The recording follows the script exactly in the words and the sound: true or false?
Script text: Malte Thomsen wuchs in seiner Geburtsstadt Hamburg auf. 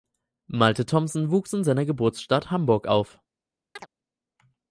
false